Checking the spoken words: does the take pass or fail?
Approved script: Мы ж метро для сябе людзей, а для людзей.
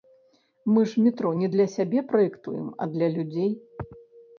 fail